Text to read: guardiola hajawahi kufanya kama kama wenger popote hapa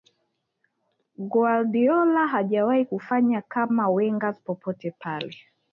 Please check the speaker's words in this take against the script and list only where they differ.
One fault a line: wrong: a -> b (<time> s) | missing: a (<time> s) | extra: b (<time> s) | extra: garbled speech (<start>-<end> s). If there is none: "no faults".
missing: kama (3.9 s)
wrong: hapa -> pale (4.9 s)